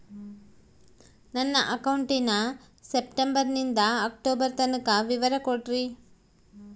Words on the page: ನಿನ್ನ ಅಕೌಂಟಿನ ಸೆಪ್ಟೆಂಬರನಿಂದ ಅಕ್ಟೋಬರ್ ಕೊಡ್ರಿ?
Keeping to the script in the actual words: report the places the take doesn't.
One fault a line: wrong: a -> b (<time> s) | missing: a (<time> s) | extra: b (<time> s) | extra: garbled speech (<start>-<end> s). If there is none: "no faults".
wrong: ನಿನ್ನ -> ನನ್ನ (1.3 s)
extra: ತನಕ ವಿವರ (4.6 s)